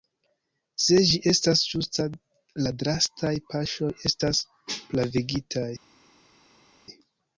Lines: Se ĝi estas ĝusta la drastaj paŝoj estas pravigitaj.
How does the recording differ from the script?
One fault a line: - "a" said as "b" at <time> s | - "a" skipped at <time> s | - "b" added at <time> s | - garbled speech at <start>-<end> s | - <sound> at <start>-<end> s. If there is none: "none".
none